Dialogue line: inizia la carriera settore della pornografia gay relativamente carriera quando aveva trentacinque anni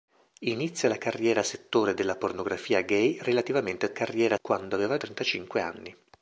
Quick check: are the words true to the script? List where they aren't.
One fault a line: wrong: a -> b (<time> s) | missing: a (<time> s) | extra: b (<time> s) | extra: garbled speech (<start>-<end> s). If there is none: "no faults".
no faults